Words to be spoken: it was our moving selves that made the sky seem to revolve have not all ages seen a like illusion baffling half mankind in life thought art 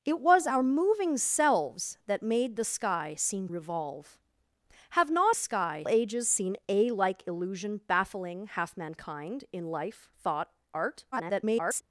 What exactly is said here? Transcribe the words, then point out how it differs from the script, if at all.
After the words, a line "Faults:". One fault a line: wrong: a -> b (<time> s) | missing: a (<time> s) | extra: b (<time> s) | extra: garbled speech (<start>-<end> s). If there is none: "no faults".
it was our moving selves that made the sky seem revolve have not sky ages seen a like illusion baffling half mankind in life thought art [garbled]
Faults:
missing: to (3.5 s)
wrong: all -> sky (5.3 s)
extra: garbled speech (11.1-11.8 s)